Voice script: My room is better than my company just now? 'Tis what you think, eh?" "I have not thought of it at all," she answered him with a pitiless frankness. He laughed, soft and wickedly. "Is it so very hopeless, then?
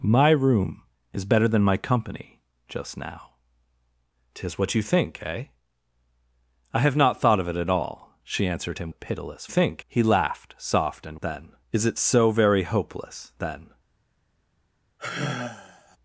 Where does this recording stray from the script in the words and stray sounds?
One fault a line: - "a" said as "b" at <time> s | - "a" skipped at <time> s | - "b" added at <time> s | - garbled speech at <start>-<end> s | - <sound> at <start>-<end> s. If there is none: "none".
- "with" skipped at 8.9 s
- "frankness" said as "think" at 9.5 s
- "wickedly" said as "then" at 11.2 s
- sigh at 15.0-16.0 s